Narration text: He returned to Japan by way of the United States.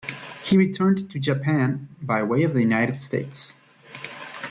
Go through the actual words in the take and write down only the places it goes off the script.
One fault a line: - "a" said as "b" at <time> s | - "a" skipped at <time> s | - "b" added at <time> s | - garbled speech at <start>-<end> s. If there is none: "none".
none